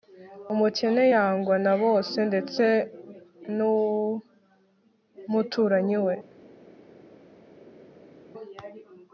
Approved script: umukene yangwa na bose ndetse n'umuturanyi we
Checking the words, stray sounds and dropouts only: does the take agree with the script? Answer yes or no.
yes